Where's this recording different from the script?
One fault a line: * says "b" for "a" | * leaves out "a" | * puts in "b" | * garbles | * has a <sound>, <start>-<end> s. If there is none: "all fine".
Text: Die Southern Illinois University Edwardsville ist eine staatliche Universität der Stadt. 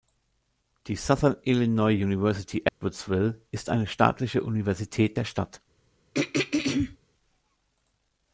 * has a dropout, 2.7-2.8 s
* has a throat clearing, 6.1-7.0 s